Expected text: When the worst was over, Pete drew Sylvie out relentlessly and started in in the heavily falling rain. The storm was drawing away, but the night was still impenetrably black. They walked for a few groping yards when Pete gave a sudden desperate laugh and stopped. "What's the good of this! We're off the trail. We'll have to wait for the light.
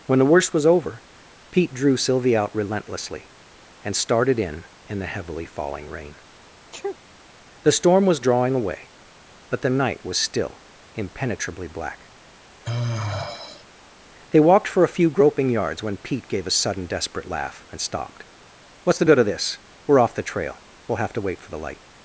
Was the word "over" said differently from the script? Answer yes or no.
no